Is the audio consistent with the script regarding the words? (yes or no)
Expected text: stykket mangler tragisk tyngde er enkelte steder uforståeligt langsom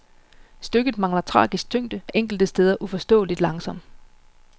yes